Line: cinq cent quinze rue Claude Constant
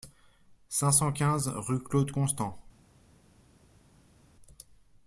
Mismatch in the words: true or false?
false